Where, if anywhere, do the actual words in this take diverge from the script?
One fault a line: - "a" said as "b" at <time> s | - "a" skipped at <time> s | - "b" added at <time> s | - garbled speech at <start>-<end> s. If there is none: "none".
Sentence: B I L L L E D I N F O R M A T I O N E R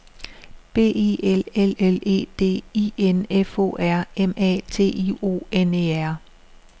none